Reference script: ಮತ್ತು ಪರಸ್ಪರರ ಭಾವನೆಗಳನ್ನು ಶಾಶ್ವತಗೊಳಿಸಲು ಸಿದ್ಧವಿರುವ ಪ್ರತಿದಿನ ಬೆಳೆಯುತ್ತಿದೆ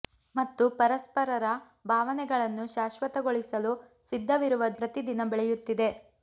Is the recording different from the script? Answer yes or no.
no